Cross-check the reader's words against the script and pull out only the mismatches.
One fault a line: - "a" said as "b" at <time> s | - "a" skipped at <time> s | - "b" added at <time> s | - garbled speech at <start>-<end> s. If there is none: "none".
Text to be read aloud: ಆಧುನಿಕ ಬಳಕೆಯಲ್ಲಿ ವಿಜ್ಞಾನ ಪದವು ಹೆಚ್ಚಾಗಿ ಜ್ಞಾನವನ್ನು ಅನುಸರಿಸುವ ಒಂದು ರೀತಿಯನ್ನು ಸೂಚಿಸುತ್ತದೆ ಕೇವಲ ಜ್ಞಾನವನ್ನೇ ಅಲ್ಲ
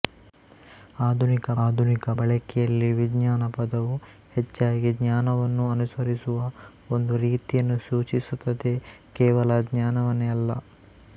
- "ಆಧುನಿಕ" added at 1.6 s